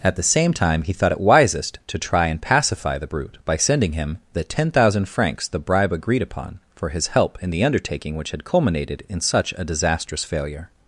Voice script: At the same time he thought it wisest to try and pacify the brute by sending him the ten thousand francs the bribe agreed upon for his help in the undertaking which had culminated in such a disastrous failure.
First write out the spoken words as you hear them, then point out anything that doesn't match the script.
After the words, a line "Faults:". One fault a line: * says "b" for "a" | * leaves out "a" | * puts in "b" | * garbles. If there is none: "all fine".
At the same time he thought it wisest to try and pacify the brute by sending him the ten thousand francs the bribe agreed upon for his help in the undertaking which had culminated in such a disastrous failure.
Faults:
all fine